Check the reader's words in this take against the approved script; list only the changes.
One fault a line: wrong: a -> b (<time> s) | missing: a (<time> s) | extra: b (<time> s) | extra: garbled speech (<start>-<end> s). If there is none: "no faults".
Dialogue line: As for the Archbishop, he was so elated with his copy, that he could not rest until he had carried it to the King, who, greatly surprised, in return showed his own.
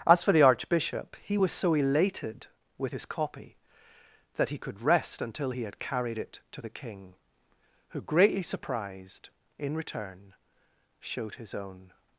missing: not (4.8 s)